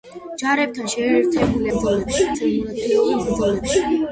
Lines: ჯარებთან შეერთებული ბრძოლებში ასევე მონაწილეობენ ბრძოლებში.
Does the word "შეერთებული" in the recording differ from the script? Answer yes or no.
no